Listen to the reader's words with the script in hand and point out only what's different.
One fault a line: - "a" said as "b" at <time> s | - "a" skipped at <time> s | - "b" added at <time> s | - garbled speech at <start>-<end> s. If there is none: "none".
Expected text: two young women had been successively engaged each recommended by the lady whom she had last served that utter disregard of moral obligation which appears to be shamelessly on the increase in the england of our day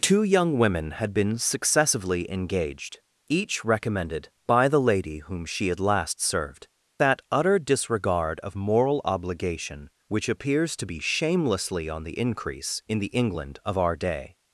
none